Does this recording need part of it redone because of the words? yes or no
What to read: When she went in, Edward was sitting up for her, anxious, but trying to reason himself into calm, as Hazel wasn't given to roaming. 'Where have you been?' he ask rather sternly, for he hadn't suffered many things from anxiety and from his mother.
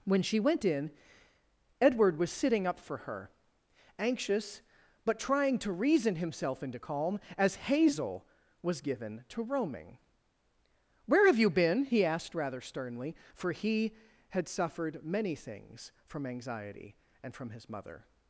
yes